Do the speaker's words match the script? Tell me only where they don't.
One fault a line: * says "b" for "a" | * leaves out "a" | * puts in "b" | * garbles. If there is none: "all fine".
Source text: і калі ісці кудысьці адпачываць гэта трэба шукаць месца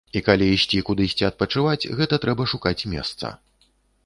all fine